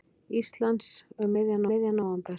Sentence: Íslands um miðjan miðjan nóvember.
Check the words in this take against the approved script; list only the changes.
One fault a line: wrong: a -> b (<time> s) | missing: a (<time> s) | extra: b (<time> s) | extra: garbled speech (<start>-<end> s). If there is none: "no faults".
no faults